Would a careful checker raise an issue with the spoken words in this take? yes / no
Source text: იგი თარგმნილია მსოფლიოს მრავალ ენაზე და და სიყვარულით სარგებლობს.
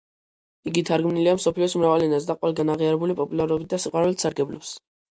yes